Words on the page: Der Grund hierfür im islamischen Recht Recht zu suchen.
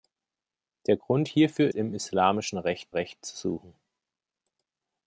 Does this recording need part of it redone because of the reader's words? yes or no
no